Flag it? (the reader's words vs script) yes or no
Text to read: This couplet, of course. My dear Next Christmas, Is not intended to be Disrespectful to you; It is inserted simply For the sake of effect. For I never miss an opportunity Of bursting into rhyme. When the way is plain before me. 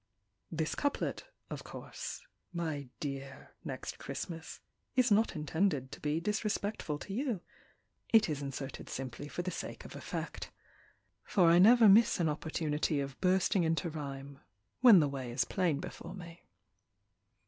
no